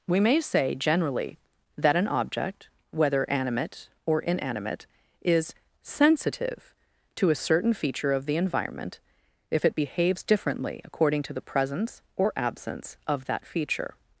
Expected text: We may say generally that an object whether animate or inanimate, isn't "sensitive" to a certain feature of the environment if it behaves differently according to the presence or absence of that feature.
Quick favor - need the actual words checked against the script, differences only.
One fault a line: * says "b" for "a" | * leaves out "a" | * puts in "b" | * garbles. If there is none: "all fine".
* says "is" for "isn't"